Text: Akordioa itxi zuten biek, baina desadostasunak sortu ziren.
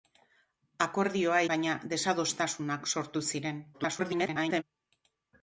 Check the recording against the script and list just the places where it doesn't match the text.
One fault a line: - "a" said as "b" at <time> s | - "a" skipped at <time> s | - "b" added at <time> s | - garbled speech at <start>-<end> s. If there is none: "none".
- "itxi zuten biek" skipped at 1.4 s
- garbled speech at 3.7-4.6 s